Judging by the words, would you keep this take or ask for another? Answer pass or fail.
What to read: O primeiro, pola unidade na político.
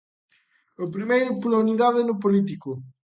fail